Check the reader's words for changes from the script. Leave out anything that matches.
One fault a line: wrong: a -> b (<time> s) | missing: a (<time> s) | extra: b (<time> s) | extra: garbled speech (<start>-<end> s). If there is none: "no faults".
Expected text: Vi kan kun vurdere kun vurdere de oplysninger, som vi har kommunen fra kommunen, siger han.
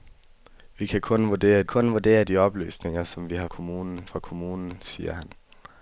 no faults